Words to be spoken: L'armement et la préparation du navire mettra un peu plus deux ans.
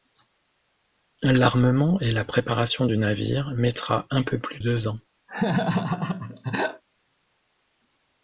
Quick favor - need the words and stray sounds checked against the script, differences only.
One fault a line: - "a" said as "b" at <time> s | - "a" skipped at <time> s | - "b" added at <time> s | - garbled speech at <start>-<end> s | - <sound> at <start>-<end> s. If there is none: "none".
- laugh at 5.3-6.8 s